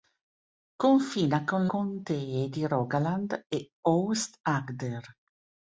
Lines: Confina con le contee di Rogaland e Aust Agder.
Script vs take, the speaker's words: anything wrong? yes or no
yes